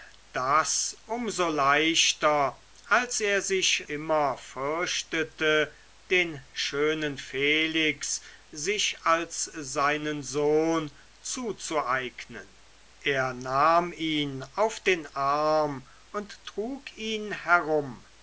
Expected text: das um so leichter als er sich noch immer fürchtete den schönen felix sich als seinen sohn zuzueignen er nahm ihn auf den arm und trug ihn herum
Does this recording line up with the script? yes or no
no